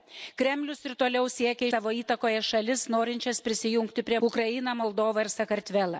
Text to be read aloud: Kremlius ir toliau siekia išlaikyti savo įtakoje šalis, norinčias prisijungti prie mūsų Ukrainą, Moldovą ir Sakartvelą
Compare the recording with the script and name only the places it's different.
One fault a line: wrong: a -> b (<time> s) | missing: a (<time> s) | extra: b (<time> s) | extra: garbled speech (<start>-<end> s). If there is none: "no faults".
missing: išlaikyti (1.7 s)
missing: mūsų (4.2 s)